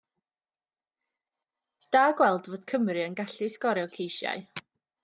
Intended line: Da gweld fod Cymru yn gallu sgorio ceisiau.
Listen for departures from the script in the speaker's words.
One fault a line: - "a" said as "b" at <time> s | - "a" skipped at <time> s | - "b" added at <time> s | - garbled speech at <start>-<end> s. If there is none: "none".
none